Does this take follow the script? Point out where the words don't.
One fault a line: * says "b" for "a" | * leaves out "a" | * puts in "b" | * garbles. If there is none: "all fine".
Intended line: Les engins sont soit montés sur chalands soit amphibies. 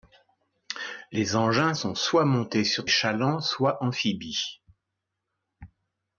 all fine